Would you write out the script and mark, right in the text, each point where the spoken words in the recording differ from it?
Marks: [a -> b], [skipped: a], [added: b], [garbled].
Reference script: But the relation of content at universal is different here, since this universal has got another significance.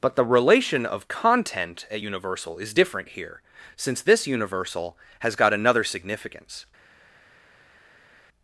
But the relation of content at universal is different here, since this universal has got another significance.